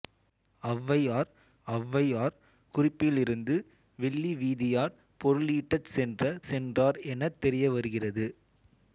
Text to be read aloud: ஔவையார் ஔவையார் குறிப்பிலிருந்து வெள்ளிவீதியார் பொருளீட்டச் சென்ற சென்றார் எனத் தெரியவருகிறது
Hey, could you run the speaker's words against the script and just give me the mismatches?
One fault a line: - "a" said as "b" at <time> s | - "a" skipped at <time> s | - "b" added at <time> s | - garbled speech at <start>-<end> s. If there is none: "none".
none